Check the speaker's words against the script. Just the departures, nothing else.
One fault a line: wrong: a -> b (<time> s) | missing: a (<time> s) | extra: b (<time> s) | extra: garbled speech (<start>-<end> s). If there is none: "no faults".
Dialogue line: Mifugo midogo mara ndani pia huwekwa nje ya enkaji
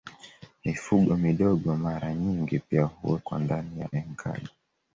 wrong: ndani -> nyingi (2.1 s)
wrong: nje -> ndani (3.4 s)